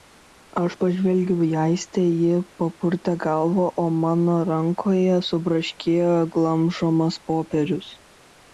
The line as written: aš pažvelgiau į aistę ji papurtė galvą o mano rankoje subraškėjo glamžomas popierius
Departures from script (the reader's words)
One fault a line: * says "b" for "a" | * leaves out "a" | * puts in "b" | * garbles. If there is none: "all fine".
all fine